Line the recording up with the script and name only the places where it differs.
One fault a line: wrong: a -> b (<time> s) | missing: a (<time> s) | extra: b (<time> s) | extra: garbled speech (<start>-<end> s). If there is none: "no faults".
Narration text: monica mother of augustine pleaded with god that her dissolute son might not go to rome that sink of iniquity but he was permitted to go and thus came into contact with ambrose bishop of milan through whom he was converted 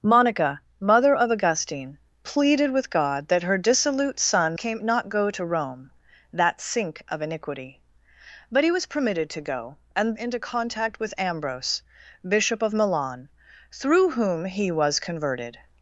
wrong: might -> came (4.5 s)
missing: thus came (10.2 s)